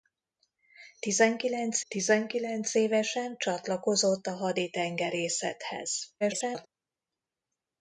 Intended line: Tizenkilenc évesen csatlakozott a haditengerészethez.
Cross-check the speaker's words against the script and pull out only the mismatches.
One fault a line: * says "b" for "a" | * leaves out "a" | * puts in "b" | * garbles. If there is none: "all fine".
* puts in "tizenkilenc"
* garbles